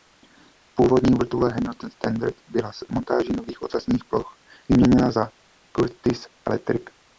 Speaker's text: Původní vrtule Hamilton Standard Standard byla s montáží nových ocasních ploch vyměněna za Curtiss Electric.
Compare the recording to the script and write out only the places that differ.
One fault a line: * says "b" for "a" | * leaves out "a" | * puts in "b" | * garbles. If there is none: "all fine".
* leaves out "Standard"